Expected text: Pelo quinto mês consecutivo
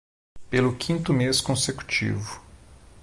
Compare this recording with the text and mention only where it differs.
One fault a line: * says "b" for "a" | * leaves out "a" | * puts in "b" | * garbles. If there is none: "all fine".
all fine